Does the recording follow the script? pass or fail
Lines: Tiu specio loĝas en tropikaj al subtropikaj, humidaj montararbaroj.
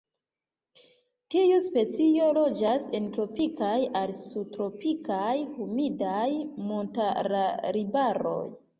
pass